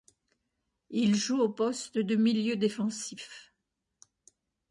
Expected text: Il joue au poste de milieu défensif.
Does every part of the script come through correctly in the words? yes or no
yes